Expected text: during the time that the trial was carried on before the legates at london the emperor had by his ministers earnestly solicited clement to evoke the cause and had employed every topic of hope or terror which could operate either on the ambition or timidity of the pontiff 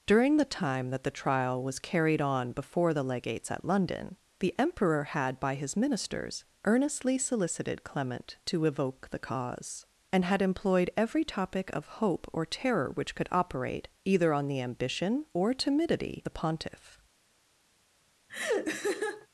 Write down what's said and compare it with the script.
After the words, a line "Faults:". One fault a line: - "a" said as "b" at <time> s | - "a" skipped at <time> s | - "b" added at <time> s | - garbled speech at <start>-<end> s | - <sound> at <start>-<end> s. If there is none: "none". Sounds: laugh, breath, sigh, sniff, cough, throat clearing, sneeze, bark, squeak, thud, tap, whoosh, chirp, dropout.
during the time that the trial was carried on before the legates at london the emperor had by his ministers earnestly solicited clement to evoke the cause and had employed every topic of hope or terror which could operate either on the ambition or timidity the pontiff
Faults:
- "of" skipped at 16.2 s
- laugh at 18.3-19.3 s